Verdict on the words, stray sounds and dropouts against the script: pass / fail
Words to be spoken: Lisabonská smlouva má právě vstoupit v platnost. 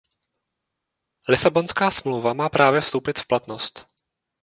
pass